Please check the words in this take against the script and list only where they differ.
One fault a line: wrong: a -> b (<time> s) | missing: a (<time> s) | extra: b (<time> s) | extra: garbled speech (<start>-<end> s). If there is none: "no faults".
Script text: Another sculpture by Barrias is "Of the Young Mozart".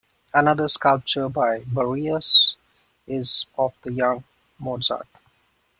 no faults